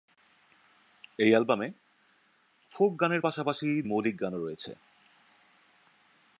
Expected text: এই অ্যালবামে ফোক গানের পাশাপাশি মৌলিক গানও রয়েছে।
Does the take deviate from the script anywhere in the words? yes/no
no